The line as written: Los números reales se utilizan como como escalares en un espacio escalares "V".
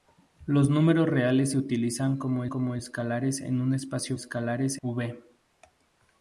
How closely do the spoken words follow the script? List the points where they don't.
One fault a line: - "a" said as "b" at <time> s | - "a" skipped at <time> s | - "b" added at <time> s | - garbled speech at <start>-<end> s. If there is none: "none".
none